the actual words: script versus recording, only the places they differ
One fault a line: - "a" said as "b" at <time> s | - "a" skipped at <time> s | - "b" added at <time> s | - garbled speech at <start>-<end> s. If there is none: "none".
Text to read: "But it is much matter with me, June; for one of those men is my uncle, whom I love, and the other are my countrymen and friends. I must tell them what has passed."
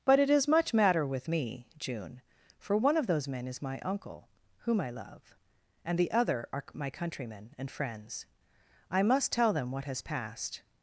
none